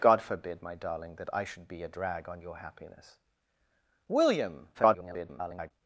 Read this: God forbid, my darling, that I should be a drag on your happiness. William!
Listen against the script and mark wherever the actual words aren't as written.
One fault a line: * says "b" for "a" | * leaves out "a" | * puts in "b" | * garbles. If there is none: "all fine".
* garbles